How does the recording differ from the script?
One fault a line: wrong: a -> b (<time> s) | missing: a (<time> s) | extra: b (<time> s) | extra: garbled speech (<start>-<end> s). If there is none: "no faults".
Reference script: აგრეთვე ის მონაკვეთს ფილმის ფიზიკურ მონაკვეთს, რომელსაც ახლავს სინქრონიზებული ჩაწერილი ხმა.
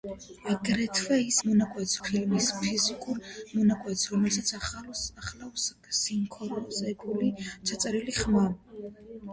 no faults